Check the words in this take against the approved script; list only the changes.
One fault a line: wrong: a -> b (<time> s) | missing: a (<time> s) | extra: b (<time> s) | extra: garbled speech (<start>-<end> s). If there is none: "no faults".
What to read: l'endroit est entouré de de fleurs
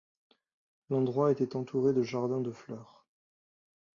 wrong: est -> était (1.3 s)
extra: jardins (2.0 s)